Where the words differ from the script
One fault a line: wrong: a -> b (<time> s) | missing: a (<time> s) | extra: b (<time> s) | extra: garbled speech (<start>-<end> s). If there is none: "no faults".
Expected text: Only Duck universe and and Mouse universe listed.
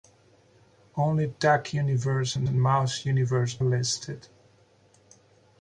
no faults